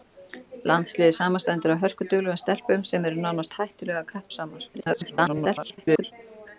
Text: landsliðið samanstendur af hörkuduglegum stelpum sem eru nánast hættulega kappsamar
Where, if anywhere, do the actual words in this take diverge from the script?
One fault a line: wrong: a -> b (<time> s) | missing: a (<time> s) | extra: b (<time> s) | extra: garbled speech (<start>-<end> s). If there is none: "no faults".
extra: garbled speech (4.7-6.1 s)